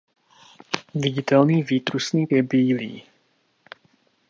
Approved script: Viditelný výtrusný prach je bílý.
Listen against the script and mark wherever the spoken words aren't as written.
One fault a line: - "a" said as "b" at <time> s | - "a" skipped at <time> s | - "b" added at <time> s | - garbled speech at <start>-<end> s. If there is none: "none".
- "prach" skipped at 2.3 s